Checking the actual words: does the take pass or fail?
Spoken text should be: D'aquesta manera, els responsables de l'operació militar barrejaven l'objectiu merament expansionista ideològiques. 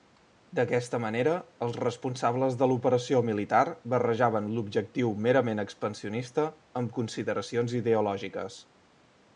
fail